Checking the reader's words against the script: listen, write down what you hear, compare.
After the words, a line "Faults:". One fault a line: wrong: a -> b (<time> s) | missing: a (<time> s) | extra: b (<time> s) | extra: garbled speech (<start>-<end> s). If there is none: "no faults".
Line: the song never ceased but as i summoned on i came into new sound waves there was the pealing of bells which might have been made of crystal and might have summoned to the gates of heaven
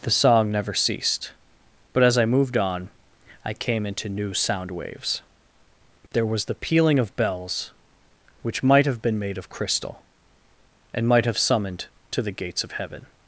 the song never ceased but as i moved on i came into new sound waves there was the pealing of bells which might have been made of crystal and might have summoned to the gates of heaven
Faults:
wrong: summoned -> moved (2.2 s)